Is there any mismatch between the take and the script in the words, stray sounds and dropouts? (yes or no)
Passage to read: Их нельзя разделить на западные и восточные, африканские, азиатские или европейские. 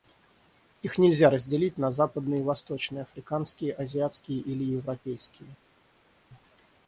no